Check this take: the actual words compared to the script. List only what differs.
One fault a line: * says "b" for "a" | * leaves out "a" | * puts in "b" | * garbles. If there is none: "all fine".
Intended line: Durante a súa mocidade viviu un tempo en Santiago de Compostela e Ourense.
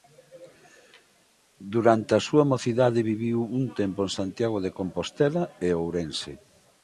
all fine